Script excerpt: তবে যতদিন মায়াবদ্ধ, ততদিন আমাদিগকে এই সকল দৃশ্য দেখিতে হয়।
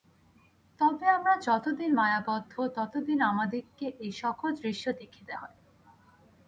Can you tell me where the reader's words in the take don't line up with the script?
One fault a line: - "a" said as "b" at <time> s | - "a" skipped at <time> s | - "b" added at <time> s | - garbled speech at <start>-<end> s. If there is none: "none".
- "আমরা" added at 1.1 s